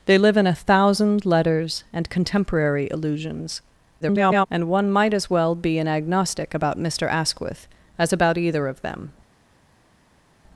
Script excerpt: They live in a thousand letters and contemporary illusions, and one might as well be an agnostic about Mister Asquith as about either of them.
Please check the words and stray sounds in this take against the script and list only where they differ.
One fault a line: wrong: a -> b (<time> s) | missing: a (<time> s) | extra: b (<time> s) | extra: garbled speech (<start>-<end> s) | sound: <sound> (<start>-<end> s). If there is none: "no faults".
extra: garbled speech (4.0-4.5 s)